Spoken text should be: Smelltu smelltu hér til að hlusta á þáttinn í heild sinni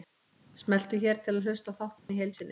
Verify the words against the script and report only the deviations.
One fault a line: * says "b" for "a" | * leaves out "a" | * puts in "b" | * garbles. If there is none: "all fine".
* leaves out "smelltu"